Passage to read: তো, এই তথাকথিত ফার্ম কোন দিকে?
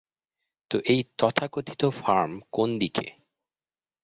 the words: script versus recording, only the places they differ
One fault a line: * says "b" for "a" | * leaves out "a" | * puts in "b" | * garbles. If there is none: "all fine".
all fine